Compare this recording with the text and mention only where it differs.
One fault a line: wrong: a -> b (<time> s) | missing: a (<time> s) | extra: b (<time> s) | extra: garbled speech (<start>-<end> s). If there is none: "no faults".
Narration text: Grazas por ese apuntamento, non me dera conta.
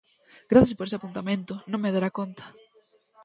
no faults